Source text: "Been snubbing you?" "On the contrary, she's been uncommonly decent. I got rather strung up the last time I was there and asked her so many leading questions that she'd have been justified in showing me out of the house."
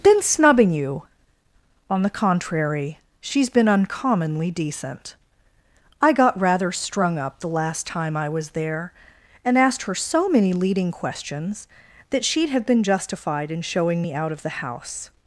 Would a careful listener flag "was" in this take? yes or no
no